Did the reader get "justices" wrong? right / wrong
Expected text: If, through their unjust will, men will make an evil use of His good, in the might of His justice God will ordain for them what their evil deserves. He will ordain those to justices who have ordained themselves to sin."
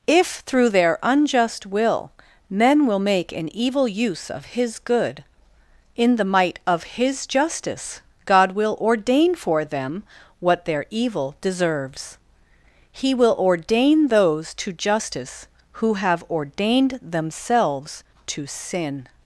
wrong